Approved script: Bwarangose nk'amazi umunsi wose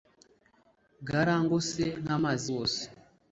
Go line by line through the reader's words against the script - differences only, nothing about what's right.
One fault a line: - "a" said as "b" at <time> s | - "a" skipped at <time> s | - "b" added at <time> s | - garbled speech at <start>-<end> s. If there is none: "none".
- "umunsi" skipped at 2.5 s